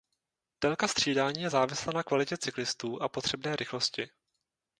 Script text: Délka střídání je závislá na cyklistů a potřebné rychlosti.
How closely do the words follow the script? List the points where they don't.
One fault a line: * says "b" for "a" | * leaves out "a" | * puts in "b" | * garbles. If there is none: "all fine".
* puts in "kvalitě"